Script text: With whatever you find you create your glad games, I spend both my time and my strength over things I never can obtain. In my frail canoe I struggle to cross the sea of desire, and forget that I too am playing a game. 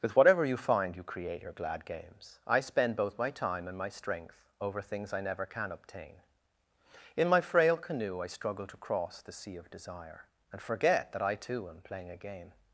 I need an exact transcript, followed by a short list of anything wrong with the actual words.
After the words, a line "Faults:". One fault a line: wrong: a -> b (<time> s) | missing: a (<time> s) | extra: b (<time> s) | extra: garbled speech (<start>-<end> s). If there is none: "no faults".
With whatever you find you create your glad games, I spend both my time and my strength over things I never can obtain. In my frail canoe I struggle to cross the sea of desire, and forget that I too am playing a game.
Faults:
no faults